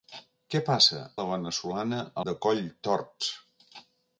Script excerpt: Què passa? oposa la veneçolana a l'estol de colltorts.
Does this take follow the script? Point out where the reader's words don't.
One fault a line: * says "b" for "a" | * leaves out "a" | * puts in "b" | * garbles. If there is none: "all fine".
* leaves out "oposa"
* leaves out "l'estol"